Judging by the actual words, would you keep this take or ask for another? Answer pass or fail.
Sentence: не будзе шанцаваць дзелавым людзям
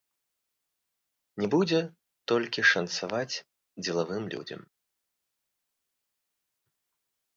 fail